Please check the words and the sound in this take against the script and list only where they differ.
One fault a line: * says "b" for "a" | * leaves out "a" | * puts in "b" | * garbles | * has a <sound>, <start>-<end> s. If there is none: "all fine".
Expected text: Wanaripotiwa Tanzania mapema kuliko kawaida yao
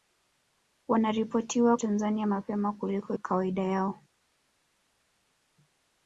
all fine